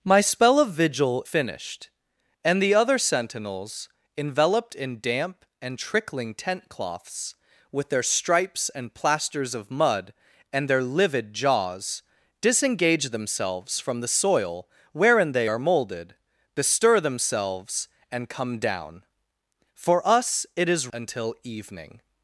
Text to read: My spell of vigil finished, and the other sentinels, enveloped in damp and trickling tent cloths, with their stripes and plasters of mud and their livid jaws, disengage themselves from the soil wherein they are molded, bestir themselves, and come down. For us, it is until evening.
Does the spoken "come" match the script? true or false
true